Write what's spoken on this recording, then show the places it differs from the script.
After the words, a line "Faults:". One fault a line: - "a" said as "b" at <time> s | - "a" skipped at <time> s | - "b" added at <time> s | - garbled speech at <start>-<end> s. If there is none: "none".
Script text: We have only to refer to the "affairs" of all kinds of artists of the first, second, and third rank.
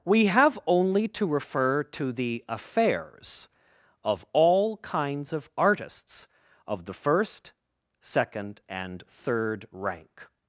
We have only to refer to the "affairs" of all kinds of artists of the first, second, and third rank.
Faults:
none